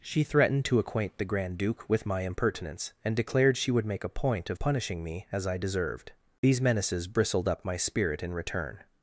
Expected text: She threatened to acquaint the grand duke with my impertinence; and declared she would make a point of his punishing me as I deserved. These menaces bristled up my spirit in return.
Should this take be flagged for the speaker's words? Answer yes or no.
yes